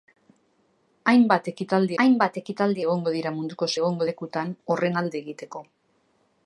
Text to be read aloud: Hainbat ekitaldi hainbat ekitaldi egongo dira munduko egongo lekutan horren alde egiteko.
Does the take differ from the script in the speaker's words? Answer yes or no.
no